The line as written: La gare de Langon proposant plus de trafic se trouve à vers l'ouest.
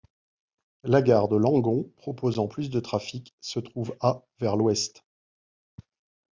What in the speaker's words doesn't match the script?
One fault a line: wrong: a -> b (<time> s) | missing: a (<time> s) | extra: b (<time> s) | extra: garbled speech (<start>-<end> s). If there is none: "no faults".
no faults